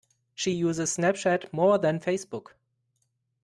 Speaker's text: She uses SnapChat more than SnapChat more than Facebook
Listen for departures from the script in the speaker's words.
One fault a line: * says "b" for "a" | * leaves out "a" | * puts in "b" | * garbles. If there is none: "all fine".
* leaves out "SnapChat more than"